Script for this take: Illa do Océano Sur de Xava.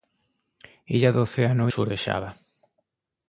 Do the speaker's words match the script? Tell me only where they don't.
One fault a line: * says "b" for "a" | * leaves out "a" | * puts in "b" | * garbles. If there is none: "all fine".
all fine